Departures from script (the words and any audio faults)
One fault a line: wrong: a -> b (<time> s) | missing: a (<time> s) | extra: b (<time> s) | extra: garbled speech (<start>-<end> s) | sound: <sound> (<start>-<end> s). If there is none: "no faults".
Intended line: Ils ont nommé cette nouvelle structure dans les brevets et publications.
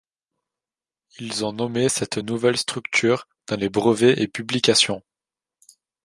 no faults